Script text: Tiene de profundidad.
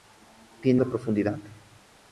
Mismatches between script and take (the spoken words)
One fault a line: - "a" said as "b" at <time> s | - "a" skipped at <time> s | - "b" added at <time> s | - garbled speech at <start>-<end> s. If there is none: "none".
none